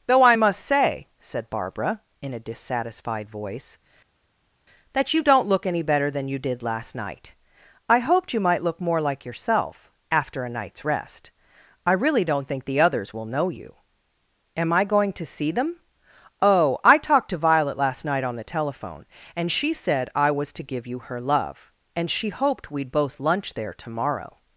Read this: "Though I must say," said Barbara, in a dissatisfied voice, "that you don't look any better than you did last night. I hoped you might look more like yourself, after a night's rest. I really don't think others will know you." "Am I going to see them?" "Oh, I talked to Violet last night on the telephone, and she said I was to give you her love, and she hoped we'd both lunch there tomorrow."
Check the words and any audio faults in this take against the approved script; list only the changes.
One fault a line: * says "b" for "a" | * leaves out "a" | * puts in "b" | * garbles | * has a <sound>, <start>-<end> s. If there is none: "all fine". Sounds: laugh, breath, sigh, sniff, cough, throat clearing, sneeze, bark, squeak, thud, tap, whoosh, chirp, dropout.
* puts in "the"